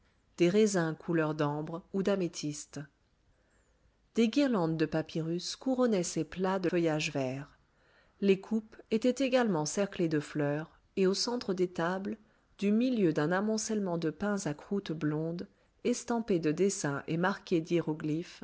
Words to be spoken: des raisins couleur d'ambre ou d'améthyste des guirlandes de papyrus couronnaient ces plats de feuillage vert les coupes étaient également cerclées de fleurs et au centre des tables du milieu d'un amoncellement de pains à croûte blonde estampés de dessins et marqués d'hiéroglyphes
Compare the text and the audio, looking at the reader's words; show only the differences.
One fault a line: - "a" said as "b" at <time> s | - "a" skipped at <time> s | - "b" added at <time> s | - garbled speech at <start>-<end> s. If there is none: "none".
none